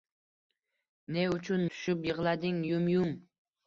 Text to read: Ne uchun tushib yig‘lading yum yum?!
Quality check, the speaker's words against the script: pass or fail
pass